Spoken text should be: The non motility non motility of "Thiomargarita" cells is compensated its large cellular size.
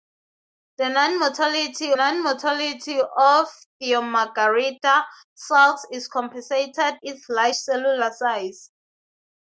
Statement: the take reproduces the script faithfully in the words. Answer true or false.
true